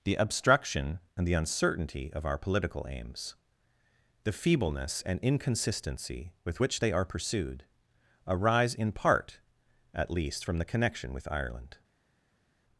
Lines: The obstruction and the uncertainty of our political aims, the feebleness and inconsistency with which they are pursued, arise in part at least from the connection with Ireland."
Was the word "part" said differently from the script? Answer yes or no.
no